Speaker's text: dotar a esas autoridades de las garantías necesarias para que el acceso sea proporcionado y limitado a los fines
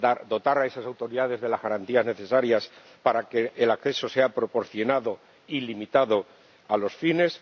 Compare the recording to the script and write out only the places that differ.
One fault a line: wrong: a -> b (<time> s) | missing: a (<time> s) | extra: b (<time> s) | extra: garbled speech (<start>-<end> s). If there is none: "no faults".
no faults